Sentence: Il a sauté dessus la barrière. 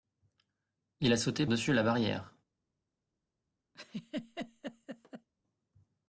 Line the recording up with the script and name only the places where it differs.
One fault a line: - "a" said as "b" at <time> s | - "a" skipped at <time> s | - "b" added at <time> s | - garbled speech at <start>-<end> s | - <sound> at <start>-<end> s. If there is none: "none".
- laugh at 3.7-5.3 s